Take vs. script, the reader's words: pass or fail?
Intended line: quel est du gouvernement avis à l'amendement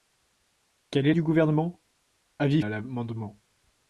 pass